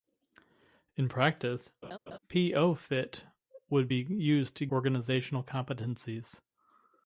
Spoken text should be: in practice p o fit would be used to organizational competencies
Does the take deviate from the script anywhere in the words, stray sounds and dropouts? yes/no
yes